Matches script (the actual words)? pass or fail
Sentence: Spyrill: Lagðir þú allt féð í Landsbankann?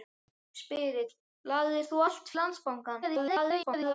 fail